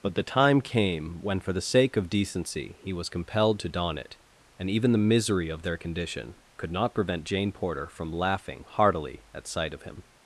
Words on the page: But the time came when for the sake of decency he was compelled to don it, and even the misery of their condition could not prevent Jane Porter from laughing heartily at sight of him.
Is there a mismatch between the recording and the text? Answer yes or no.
no